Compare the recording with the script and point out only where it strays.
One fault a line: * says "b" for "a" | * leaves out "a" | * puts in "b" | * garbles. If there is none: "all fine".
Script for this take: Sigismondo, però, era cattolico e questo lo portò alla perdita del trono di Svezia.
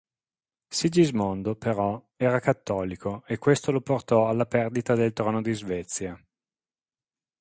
all fine